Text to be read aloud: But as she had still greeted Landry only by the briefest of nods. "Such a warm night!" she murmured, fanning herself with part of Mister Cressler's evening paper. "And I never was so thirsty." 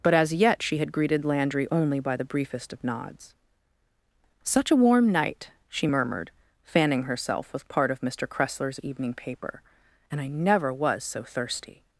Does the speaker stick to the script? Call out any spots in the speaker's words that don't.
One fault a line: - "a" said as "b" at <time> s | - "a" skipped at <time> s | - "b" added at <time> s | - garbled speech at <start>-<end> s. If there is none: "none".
- "yet" added at 0.3 s
- "still" skipped at 0.9 s